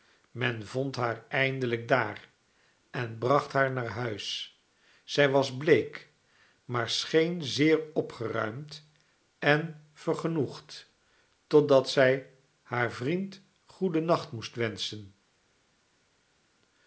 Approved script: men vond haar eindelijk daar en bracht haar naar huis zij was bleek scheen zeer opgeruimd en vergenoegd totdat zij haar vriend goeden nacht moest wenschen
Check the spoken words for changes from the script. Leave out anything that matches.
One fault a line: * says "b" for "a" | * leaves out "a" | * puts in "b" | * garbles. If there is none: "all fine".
* puts in "maar"